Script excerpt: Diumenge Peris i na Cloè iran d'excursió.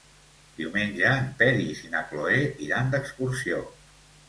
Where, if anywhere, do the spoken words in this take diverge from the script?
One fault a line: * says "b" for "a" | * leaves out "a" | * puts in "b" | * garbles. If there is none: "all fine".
* puts in "en"